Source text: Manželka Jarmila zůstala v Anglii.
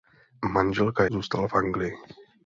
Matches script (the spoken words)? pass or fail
fail